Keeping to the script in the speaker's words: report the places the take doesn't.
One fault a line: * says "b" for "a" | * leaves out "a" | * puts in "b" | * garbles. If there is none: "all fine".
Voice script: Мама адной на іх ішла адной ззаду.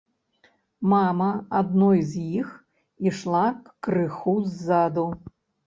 * says "з" for "на"
* says "крыху" for "адной"